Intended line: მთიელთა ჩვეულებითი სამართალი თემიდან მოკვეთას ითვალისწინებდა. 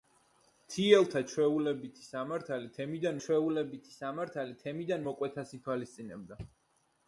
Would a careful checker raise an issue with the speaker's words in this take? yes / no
yes